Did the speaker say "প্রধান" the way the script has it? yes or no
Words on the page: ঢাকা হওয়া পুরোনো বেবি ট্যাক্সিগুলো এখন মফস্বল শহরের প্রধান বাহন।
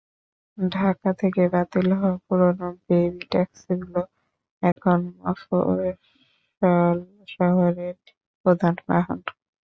yes